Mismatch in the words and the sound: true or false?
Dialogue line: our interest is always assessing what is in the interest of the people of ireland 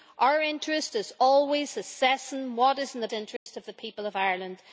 true